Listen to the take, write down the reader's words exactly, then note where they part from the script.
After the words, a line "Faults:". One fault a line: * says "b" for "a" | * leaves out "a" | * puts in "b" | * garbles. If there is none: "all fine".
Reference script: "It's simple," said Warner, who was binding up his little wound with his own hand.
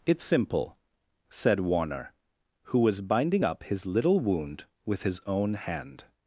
"It's simple," said Warner, who was binding up his little wound with his own hand.
Faults:
all fine